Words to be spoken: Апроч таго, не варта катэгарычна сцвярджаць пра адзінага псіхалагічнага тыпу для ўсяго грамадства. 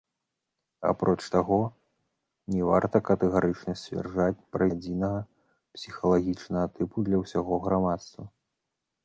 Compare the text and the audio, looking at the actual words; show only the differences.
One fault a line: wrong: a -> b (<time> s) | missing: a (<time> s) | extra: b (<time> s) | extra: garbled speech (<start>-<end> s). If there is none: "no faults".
no faults